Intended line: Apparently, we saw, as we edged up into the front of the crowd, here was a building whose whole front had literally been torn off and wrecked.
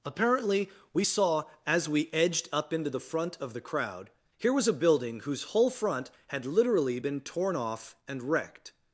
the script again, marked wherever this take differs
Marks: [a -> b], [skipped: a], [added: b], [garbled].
Apparently, we saw, as we edged up into the front of the crowd, here was a building whose whole front had literally been torn off and wrecked.